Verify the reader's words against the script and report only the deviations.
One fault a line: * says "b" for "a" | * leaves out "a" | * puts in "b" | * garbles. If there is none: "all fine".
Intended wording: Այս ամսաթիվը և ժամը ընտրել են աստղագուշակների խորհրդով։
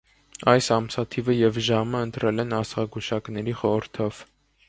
all fine